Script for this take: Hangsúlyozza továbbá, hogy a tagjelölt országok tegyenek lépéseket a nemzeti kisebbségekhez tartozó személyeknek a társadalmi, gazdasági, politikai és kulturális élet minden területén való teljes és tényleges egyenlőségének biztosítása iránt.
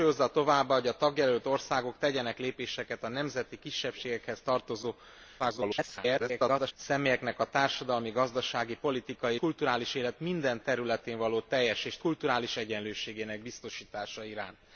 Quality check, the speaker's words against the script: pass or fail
fail